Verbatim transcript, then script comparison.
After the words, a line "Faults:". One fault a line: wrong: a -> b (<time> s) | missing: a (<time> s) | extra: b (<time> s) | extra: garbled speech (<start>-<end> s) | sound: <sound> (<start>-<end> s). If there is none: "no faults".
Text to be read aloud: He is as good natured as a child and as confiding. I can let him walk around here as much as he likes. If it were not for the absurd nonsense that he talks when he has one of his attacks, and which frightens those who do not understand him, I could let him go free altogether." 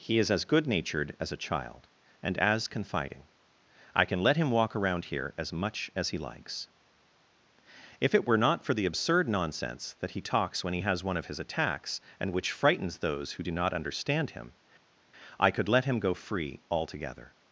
He is as good natured as a child and as confiding. I can let him walk around here as much as he likes. If it were not for the absurd nonsense that he talks when he has one of his attacks, and which frightens those who do not understand him, I could let him go free altogether."
Faults:
no faults